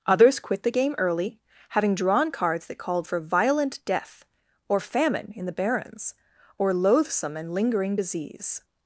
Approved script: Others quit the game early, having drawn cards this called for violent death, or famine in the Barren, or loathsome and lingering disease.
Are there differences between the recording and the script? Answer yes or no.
yes